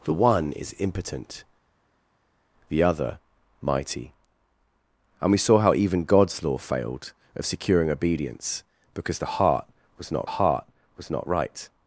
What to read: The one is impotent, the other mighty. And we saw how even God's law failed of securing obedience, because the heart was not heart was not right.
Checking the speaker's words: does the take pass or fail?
pass